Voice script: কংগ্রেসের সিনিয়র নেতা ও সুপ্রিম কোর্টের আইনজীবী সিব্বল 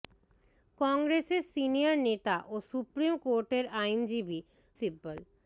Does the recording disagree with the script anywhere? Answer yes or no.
no